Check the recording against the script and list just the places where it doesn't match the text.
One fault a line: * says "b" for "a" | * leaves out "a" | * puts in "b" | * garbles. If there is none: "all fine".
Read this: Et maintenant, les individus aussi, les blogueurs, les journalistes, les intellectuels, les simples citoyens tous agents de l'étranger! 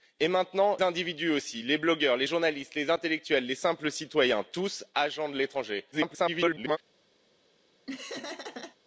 * leaves out "les"
* garbles